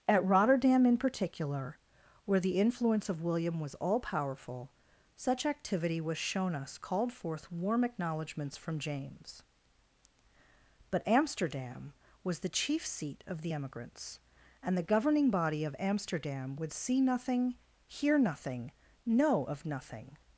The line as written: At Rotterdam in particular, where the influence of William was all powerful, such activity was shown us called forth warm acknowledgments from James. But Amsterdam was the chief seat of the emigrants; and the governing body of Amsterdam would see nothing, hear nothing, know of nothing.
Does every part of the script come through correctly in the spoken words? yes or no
yes